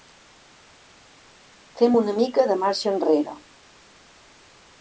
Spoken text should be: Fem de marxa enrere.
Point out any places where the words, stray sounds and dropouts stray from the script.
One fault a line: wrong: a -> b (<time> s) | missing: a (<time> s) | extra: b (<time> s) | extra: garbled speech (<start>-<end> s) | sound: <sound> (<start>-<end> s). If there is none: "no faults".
extra: una mica (2.0 s)